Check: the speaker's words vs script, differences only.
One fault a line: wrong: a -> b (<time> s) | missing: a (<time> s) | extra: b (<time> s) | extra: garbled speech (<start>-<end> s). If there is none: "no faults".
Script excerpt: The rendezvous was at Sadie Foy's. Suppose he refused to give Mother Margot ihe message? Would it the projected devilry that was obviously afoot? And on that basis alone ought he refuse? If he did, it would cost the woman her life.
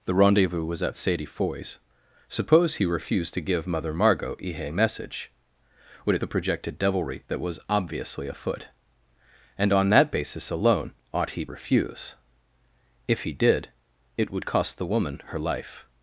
no faults